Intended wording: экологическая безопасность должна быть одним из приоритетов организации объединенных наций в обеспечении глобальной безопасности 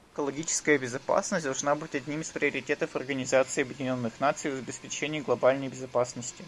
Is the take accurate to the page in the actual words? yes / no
yes